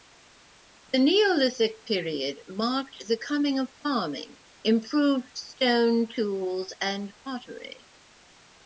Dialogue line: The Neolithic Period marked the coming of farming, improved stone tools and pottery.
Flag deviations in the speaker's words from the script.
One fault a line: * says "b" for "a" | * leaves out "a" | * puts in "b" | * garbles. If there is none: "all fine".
all fine